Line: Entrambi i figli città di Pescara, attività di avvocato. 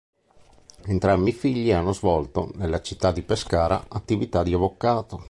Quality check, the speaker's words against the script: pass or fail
fail